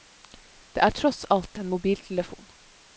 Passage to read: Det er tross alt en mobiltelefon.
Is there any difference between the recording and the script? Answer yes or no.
no